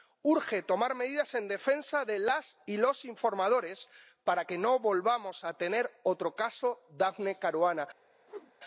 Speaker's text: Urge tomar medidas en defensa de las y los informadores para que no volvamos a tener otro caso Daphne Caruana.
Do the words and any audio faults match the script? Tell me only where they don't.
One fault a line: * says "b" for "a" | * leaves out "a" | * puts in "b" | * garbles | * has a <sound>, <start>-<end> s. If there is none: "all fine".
* has a whoosh, 8.3-8.5 s